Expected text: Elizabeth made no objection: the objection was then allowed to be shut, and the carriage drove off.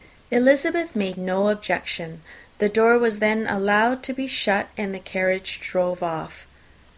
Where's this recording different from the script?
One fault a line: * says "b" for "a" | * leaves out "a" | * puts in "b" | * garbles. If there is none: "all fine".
* says "door" for "objection"